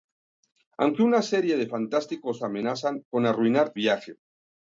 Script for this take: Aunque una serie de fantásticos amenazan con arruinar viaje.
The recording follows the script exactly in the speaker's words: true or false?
true